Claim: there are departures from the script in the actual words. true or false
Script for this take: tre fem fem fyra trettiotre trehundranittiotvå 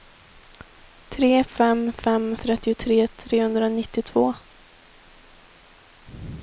true